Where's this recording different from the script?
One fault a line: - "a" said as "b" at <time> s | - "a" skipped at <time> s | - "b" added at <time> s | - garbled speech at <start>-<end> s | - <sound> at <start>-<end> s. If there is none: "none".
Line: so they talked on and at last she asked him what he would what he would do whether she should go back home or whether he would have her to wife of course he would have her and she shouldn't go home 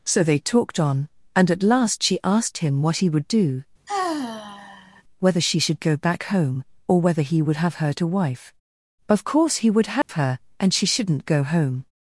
- "what he would" skipped at 3.3 s
- sigh at 3.9-5.0 s
- dropout at 10.0-10.1 s